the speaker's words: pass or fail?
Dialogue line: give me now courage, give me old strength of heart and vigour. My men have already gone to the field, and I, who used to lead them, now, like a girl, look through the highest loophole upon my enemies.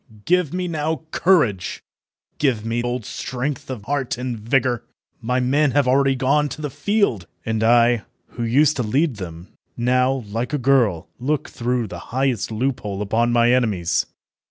pass